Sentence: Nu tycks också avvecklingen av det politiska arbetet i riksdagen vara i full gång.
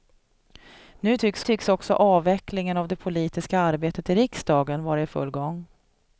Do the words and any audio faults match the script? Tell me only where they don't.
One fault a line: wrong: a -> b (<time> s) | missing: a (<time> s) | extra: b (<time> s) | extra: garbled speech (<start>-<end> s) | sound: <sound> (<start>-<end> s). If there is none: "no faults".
extra: tycks (1.4 s)